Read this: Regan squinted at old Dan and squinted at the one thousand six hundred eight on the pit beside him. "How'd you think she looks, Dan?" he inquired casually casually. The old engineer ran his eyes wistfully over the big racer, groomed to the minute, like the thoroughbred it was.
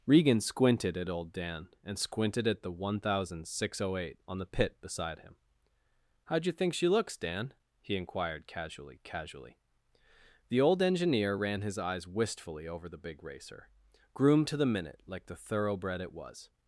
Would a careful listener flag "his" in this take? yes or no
no